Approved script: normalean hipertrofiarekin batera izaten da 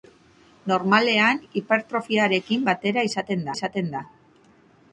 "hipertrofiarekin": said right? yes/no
yes